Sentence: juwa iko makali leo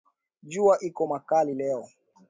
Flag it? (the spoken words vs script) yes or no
no